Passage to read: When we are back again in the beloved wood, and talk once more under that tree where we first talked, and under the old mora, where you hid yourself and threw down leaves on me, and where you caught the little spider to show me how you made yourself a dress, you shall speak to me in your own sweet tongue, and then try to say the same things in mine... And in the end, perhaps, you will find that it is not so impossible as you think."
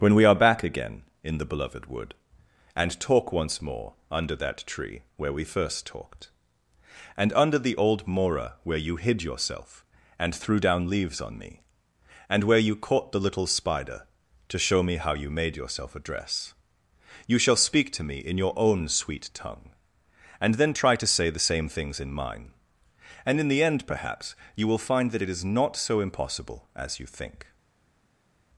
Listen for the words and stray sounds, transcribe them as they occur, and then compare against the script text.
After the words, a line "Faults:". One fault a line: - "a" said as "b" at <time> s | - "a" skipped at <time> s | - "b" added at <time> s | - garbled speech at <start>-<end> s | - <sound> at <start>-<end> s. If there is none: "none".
When we are back again in the beloved wood, and talk once more under that tree where we first talked, and under the old mora, where you hid yourself and threw down leaves on me, and where you caught the little spider to show me how you made yourself a dress, you shall speak to me in your own sweet tongue, and then try to say the same things in mine... And in the end, perhaps, you will find that it is not so impossible as you think."
Faults:
none